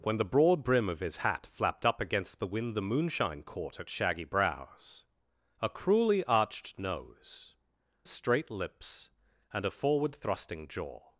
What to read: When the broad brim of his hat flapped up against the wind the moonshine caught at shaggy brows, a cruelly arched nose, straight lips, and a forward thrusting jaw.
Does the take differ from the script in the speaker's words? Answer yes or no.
no